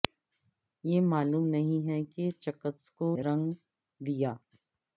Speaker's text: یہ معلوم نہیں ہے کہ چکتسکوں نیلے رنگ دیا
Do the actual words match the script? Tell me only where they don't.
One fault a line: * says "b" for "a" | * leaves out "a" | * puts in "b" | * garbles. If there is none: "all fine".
* leaves out "نیلے"